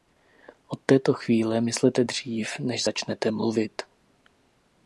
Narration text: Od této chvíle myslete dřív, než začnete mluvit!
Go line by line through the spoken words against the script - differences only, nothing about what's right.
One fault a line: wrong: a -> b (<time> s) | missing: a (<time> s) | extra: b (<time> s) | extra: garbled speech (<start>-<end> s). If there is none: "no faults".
no faults